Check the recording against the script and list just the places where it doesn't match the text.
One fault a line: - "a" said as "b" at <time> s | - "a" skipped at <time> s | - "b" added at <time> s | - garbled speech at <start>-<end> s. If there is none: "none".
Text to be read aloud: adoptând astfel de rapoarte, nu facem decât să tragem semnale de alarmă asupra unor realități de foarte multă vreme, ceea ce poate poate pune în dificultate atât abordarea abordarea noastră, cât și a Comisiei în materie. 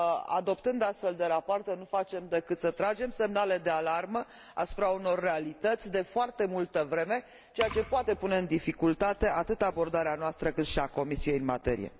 - "poate" skipped at 8.2 s
- "abordarea" skipped at 10.2 s